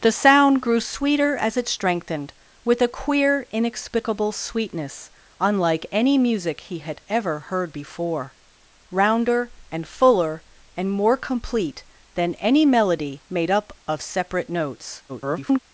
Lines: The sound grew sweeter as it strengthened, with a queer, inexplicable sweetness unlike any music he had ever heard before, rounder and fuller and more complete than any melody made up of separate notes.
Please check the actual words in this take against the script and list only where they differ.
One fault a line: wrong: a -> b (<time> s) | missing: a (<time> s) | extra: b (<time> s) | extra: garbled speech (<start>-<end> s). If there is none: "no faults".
extra: garbled speech (15.1-15.6 s)